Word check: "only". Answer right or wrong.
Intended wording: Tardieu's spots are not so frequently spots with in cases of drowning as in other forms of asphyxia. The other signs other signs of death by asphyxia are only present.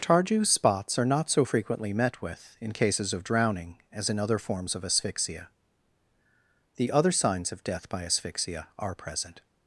wrong